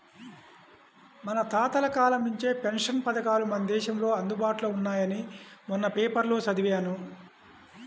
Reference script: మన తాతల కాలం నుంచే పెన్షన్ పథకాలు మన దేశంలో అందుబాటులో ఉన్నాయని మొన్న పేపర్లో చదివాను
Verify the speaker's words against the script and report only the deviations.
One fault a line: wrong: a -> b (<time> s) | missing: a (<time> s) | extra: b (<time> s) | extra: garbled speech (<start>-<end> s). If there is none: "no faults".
no faults